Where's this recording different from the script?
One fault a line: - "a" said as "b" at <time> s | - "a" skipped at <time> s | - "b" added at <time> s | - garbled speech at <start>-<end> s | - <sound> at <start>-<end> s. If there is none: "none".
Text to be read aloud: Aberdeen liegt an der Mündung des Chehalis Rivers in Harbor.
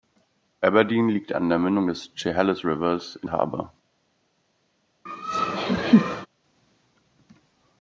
- laugh at 5.1-6.3 s